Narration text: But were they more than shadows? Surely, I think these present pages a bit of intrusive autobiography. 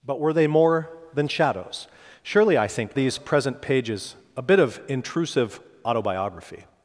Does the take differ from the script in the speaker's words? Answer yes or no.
no